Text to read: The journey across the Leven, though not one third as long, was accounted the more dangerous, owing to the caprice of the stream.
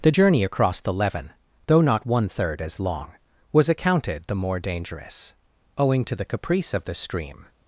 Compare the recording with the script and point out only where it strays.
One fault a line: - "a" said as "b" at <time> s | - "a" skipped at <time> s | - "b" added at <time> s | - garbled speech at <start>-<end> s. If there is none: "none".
none